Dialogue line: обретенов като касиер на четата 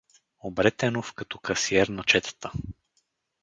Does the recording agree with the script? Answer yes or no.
yes